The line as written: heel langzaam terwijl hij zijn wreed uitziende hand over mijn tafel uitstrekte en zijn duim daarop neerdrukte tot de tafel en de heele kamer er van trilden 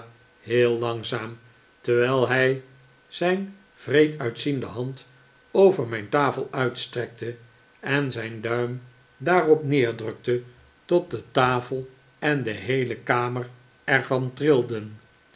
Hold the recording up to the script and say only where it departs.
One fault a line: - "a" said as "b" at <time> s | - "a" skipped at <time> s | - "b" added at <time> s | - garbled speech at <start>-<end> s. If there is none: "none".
none